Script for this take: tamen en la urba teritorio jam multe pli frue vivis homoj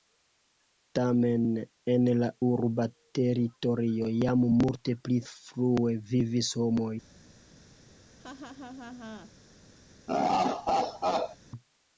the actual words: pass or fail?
pass